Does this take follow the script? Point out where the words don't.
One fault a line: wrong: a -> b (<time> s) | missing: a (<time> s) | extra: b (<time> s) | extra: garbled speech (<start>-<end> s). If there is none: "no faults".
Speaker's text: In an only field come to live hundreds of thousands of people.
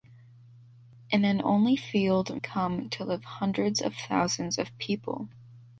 no faults